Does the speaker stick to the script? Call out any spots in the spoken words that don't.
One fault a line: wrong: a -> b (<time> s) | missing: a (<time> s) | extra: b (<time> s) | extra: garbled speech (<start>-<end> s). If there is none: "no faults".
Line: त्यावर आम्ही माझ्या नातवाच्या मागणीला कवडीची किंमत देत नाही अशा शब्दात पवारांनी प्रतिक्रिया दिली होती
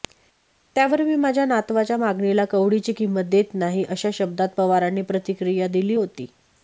wrong: आम्ही -> मी (1.0 s)